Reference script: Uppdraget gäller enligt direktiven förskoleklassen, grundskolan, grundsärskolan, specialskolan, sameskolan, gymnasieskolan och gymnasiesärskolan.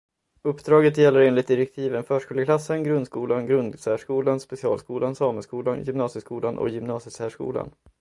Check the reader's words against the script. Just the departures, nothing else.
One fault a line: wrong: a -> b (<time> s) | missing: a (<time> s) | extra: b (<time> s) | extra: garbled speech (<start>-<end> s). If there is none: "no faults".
no faults